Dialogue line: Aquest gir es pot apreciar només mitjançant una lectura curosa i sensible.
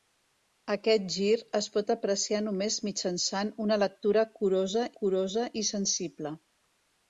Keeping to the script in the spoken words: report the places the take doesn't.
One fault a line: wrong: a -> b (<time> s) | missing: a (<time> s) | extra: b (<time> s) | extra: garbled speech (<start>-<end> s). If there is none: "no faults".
extra: curosa (5.0 s)